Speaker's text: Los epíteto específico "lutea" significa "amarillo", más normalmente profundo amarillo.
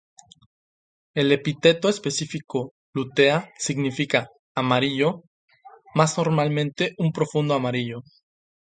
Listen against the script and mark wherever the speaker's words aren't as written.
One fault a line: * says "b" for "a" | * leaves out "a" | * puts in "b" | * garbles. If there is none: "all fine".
* says "El" for "Los"
* puts in "un"